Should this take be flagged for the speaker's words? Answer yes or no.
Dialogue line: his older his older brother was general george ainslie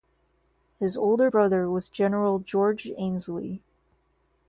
yes